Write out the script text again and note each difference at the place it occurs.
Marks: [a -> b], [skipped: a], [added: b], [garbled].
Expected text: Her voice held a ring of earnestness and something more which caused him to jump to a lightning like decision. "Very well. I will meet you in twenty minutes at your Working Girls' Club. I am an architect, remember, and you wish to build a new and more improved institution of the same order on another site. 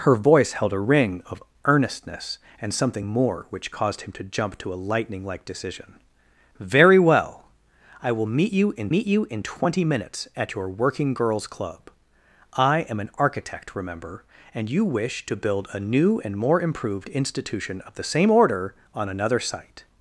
Her voice held a ring of earnestness and something more which caused him to jump to a lightning like decision. "Very well. I will meet you in [added: meet you in] twenty minutes at your Working Girls' Club. I am an architect, remember, and you wish to build a new and more improved institution of the same order on another site.